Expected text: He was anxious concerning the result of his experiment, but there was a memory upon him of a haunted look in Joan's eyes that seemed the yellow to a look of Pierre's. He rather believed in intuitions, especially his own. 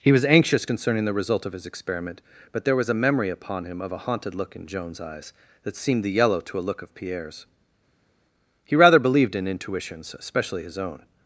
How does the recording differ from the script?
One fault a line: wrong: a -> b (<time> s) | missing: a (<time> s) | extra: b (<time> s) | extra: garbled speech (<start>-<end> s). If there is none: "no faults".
no faults